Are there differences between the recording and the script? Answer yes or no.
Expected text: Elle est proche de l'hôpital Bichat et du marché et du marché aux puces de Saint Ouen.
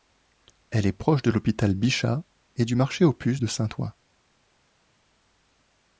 yes